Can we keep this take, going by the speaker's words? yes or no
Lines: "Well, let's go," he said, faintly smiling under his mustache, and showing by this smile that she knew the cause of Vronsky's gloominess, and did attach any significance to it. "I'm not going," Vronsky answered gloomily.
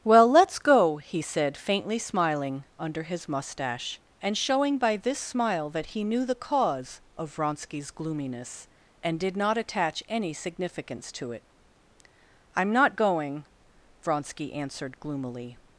no